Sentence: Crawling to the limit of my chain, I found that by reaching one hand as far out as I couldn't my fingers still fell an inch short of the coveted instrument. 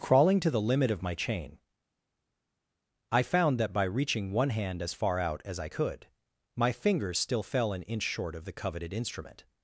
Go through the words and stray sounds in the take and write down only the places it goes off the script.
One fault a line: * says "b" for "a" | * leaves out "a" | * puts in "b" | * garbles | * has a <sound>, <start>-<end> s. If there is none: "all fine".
* says "could" for "couldn't"